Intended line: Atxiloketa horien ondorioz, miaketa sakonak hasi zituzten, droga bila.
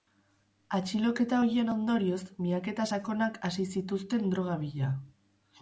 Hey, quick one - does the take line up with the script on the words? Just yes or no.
yes